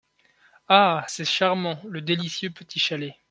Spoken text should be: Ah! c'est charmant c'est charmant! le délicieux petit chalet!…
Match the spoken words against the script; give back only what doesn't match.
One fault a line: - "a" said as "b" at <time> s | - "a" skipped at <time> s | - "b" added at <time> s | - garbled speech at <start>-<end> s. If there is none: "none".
- "c'est charmant" skipped at 1.8 s